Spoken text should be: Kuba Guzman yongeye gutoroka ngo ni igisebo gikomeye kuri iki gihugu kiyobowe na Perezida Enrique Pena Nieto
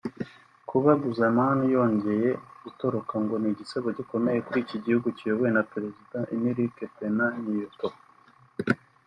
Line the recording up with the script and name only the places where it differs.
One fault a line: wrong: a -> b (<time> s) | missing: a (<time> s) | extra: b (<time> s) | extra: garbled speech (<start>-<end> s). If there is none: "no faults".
no faults